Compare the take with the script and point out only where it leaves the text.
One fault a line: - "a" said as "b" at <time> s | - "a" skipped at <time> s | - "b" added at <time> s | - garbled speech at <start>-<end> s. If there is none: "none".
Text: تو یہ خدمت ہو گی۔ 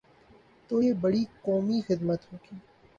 - "بڑی قومی" added at 0.9 s